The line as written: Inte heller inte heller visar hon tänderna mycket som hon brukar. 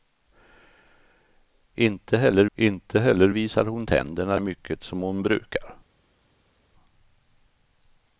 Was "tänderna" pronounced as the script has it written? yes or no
yes